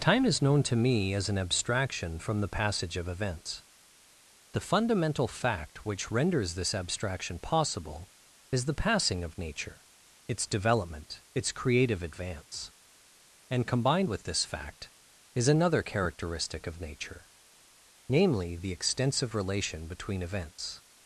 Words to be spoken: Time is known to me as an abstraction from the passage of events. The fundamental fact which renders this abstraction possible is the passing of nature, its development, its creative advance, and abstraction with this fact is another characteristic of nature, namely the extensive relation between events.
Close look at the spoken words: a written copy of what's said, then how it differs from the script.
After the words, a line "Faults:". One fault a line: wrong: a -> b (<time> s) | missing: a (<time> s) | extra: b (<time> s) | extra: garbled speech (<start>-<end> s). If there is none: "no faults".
Time is known to me as an abstraction from the passage of events. The fundamental fact which renders this abstraction possible is the passing of nature, its development, its creative advance, and combined with this fact is another characteristic of nature, namely the extensive relation between events.
Faults:
wrong: abstraction -> combined (13.7 s)